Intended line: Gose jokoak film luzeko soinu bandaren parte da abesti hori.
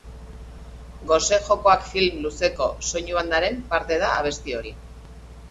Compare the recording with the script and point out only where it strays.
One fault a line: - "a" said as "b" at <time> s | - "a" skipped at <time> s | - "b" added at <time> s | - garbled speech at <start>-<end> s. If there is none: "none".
none